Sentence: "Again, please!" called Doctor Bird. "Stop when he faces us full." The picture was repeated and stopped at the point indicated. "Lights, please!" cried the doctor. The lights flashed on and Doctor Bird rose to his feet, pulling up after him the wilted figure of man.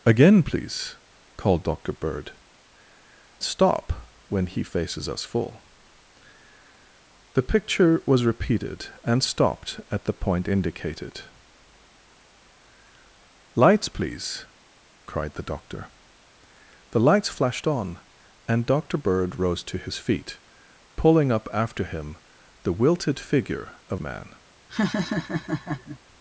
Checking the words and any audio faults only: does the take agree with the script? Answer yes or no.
no